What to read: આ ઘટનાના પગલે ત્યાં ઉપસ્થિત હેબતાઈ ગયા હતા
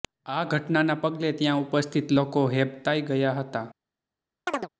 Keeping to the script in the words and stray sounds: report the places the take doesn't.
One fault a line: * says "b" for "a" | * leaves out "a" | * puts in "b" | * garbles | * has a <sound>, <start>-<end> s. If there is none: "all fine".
* puts in "લોકો"
* has a chirp, 4.5-4.7 s